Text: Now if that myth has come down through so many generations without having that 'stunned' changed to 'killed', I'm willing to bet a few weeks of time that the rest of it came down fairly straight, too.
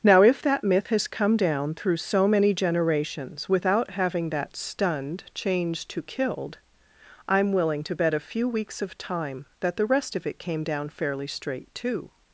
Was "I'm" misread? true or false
false